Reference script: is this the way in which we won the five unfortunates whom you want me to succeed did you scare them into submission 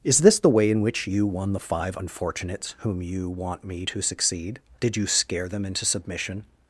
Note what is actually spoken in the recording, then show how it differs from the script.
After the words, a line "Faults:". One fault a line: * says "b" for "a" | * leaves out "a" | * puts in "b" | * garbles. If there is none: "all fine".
is this the way in which you won the five unfortunates whom you want me to succeed did you scare them into submission
Faults:
* says "you" for "we"